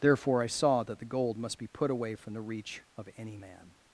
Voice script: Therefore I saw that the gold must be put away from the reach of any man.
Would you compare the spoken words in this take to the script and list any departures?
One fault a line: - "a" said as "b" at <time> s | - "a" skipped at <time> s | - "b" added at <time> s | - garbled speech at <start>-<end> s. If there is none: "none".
none